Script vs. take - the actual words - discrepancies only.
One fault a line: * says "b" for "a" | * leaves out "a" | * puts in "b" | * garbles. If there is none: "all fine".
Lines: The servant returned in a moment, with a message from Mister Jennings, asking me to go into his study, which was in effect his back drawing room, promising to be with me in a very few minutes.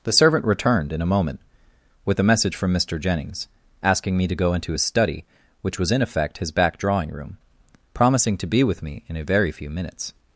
all fine